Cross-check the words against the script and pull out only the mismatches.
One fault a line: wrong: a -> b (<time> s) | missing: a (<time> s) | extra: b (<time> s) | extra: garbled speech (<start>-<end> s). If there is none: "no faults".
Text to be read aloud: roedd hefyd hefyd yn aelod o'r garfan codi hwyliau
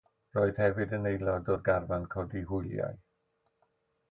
missing: hefyd (0.9 s)